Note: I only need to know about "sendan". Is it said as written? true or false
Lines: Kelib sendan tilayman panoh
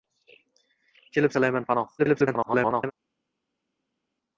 false